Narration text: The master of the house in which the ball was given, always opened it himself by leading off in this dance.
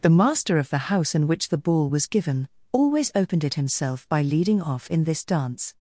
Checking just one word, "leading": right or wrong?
right